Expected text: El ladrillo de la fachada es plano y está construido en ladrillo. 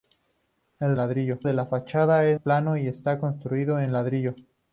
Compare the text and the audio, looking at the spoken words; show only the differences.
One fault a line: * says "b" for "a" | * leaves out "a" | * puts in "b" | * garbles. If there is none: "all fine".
all fine